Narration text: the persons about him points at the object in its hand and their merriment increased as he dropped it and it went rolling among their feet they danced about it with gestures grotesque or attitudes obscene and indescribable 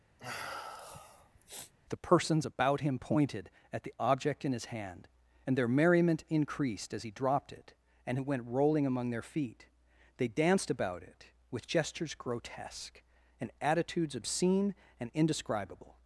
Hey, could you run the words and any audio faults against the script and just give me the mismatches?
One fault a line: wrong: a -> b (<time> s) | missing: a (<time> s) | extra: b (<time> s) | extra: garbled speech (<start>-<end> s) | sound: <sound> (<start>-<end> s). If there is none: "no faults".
sound: sniff (0.2-1.7 s)
wrong: points -> pointed (3.0 s)
wrong: its -> his (4.5 s)
wrong: or -> and (13.4 s)